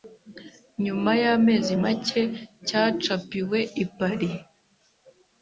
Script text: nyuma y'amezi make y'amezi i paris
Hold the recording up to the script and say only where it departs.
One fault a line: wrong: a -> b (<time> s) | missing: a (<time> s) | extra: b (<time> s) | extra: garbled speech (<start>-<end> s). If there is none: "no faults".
wrong: y'amezi -> cyacapiwe (2.7 s)